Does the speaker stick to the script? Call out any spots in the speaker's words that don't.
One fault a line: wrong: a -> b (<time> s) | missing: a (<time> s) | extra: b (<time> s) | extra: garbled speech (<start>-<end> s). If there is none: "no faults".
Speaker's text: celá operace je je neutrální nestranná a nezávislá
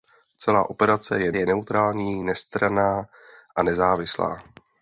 no faults